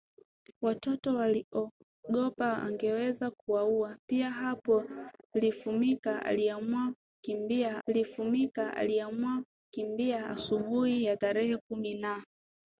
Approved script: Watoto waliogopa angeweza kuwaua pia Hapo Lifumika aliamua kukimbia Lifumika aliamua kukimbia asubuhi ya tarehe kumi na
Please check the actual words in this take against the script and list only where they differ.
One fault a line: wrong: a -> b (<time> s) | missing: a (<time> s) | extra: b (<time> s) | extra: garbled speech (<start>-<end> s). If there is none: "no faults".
no faults